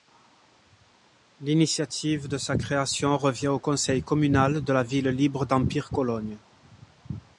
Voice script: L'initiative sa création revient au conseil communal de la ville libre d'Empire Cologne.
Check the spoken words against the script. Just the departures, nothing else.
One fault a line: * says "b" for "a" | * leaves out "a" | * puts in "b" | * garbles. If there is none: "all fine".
* puts in "de"